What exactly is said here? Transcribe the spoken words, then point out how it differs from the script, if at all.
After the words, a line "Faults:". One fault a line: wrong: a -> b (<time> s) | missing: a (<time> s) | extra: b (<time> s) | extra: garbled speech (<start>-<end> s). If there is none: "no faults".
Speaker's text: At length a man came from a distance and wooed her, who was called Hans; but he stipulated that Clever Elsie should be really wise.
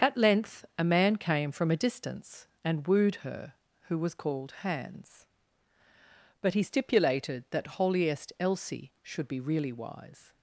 At length a man came from a distance and wooed her, who was called Hans; but he stipulated that Holiest Elsie should be really wise.
Faults:
wrong: Clever -> Holiest (7.8 s)